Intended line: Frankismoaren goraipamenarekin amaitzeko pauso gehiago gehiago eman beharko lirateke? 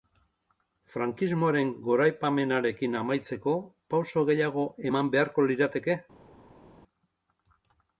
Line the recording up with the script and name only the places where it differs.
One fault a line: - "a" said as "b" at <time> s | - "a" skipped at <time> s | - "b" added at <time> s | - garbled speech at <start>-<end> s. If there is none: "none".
- "gehiago" skipped at 4.7 s